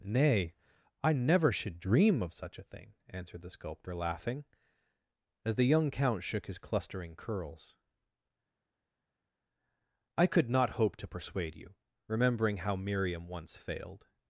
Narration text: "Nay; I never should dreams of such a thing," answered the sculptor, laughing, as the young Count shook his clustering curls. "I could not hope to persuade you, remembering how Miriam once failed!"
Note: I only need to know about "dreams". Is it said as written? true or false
false